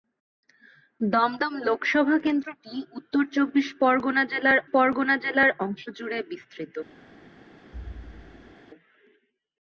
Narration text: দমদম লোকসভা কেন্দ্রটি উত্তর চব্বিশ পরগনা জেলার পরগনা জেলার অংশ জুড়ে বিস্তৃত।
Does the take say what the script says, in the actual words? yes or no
yes